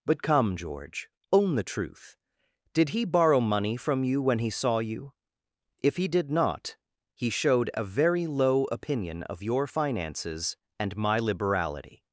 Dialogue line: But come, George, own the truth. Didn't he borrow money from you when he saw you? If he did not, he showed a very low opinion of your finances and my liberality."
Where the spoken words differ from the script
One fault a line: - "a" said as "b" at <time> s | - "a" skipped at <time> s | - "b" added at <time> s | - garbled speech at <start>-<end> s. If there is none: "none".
- "Didn't" said as "Did" at 2.7 s